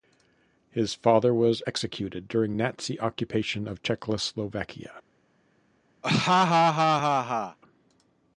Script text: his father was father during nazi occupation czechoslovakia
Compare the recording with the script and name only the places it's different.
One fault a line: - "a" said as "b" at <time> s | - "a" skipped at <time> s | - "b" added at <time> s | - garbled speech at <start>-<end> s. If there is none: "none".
- "father" said as "executed" at 1.7 s
- "of" added at 3.7 s